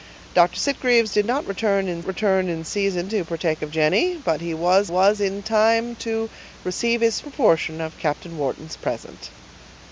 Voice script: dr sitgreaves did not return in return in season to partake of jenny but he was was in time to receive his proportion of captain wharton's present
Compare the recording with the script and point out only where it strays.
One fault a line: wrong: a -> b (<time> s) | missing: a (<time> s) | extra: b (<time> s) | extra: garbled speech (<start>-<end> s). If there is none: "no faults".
no faults